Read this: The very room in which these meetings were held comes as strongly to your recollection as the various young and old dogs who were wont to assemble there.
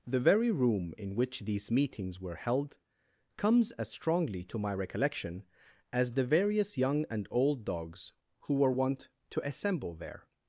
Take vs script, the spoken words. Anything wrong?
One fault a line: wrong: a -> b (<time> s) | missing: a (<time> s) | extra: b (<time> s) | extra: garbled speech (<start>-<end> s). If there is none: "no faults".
wrong: your -> my (4.6 s)